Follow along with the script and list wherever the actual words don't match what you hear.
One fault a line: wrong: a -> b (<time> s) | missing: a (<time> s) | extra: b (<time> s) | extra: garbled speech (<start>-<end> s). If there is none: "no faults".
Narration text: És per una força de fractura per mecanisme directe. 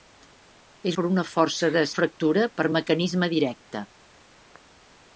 no faults